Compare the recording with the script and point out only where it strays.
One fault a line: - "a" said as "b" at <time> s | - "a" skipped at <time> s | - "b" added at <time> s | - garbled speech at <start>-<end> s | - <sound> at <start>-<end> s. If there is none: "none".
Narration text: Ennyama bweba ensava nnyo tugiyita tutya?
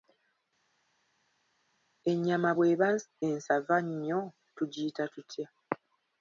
none